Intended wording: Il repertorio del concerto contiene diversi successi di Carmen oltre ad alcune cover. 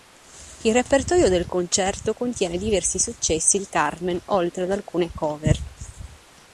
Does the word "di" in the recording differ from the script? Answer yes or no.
no